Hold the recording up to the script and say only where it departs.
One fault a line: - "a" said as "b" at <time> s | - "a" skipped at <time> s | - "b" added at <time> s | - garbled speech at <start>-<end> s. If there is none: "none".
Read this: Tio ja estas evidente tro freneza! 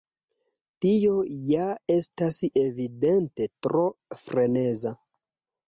none